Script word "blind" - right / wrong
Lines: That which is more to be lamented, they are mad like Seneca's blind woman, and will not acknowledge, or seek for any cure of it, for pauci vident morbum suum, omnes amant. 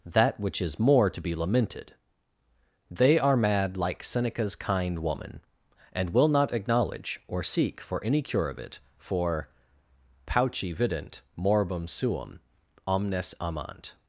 wrong